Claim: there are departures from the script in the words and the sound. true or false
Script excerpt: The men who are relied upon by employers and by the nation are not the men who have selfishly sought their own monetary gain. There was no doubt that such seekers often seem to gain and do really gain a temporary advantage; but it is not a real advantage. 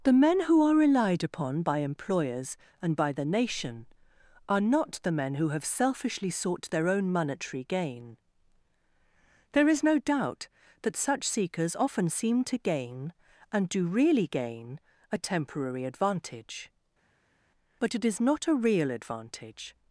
true